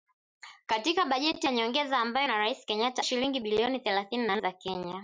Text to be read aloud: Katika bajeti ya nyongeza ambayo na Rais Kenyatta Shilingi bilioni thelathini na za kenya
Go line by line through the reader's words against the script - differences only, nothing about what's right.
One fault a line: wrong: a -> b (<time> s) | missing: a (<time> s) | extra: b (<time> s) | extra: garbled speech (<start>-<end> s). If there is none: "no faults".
no faults